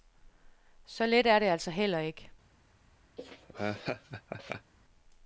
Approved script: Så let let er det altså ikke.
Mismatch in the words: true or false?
true